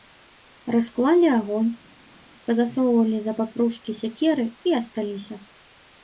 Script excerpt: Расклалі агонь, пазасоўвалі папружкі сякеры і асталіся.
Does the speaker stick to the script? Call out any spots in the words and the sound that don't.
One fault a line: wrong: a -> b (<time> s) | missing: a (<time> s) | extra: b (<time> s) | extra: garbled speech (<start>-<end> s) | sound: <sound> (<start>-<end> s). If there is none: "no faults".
extra: за (3.3 s)